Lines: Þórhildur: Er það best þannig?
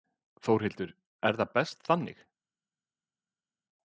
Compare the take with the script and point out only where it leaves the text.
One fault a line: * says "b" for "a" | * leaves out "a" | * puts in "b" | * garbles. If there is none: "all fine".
all fine